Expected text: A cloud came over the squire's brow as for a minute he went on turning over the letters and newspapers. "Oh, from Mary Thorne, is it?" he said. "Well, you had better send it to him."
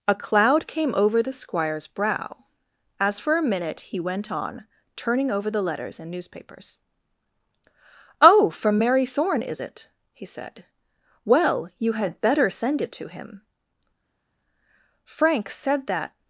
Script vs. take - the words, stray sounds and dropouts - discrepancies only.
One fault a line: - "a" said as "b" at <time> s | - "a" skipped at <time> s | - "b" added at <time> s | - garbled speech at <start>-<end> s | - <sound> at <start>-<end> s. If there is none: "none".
- "Frank said that" added at 15.0 s